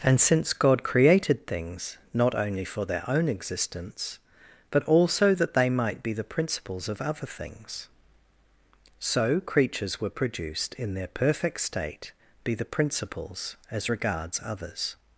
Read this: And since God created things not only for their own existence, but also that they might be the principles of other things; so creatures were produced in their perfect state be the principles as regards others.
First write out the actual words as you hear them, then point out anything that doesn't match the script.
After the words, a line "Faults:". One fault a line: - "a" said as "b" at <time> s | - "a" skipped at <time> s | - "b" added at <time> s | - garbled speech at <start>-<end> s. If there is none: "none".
And since God created things not only for their own existence, but also that they might be the principles of other things; so creatures were produced in their perfect state be the principles as regards others.
Faults:
none